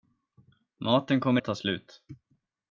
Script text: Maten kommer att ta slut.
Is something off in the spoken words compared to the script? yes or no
no